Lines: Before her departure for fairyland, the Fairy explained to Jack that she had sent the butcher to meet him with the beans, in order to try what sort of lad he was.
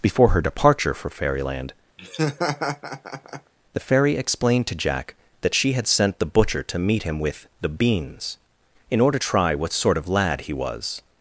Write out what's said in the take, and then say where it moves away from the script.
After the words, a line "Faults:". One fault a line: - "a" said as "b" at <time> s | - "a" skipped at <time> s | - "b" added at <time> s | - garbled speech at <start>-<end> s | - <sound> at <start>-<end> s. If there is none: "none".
Before her departure for fairyland, the Fairy explained to Jack that she had sent the butcher to meet him with the beans, in order try what sort of lad he was.
Faults:
- laugh at 2.0-3.5 s
- "to" skipped at 9.2 s